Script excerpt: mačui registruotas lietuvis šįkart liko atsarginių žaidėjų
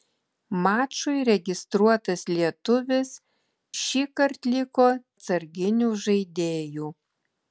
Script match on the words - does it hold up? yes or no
yes